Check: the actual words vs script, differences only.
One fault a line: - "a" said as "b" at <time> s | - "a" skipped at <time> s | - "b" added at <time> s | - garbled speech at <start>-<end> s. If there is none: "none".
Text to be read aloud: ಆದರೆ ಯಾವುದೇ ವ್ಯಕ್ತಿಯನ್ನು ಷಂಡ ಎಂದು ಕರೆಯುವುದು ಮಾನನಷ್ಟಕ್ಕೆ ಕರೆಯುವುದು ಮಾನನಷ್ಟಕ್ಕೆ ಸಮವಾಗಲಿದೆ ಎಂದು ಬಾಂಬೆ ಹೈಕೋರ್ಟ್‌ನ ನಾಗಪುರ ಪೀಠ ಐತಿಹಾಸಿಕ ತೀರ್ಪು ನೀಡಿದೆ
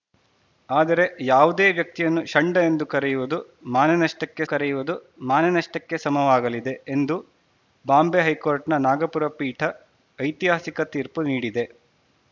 none